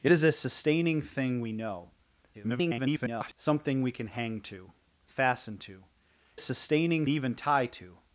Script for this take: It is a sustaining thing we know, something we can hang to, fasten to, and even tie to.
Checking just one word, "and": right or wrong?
wrong